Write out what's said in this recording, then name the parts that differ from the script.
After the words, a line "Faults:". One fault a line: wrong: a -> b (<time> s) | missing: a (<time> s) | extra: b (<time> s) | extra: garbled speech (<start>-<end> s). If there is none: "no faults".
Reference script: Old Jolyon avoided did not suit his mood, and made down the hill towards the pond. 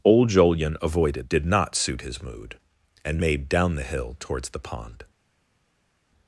Old Jolyon avoided did not suit his mood, and made down the hill towards the pond.
Faults:
no faults